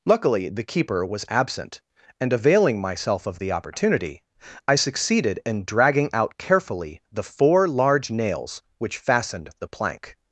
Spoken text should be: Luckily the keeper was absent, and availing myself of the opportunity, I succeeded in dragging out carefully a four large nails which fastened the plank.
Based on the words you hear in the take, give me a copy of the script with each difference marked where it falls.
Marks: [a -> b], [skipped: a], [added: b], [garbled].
Luckily the keeper was absent, and availing myself of the opportunity, I succeeded in dragging out carefully [a -> the] four large nails which fastened the plank.